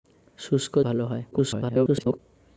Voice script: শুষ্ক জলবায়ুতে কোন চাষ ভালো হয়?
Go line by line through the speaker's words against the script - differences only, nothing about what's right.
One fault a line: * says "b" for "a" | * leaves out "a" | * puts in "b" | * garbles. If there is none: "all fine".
* leaves out "জলবায়ুতে কোন চাষ"
* garbles